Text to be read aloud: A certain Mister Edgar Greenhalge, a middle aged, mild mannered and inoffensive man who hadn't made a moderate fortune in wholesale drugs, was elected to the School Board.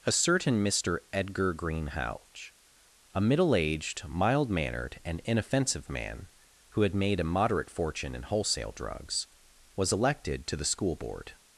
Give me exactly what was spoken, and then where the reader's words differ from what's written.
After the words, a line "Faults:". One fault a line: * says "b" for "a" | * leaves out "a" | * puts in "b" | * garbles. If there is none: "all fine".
A certain Mister Edgar Greenhalge, a middle aged, mild mannered and inoffensive man who had made a moderate fortune in wholesale drugs, was elected to the School Board.
Faults:
* says "had" for "hadn't"